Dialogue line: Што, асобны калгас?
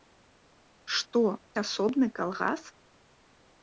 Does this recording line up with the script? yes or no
yes